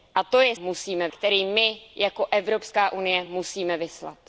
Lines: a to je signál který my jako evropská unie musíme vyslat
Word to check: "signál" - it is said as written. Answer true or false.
false